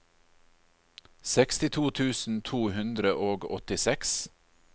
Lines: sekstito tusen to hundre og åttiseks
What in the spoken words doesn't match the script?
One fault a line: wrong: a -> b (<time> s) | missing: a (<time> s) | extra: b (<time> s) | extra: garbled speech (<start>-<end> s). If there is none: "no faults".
no faults